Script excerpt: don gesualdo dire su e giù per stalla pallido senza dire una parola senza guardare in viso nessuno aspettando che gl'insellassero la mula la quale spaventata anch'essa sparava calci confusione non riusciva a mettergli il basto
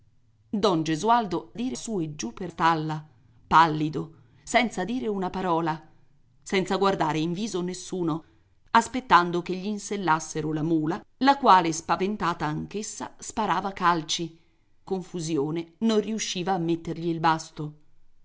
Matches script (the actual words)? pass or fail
pass